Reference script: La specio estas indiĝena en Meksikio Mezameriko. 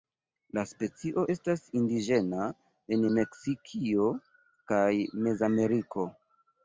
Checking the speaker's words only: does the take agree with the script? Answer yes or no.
no